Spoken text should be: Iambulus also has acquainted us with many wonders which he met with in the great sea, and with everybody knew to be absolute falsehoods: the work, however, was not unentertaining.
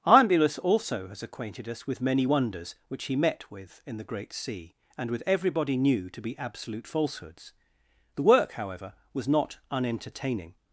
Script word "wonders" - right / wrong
right